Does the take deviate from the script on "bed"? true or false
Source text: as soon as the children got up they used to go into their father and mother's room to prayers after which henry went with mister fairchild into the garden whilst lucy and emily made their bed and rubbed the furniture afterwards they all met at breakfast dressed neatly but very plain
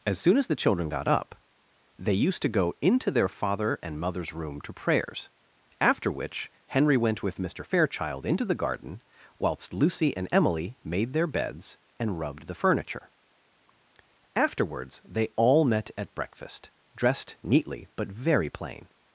true